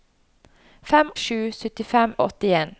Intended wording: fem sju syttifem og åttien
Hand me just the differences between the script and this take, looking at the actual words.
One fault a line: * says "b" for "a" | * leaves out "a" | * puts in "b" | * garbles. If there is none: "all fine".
all fine